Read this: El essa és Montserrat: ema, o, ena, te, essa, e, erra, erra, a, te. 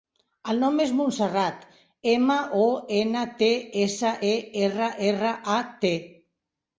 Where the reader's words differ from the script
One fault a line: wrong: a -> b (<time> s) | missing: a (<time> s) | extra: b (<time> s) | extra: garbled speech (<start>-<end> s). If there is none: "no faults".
wrong: essa -> nom (0.6 s)